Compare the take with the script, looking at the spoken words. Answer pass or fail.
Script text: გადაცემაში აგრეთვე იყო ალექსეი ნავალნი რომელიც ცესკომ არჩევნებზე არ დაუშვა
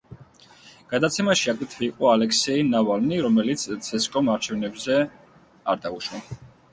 pass